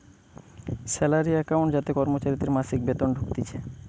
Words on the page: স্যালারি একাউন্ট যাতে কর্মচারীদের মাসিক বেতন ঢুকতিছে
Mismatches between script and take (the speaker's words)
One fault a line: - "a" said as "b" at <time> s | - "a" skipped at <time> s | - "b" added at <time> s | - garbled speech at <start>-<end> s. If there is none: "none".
none